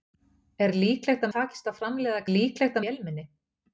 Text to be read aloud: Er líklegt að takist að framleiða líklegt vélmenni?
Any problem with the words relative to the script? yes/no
no